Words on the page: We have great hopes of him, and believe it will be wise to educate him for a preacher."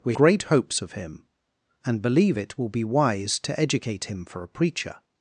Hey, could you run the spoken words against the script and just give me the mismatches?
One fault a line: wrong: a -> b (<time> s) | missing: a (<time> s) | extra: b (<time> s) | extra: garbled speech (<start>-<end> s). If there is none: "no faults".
missing: have (0.1 s)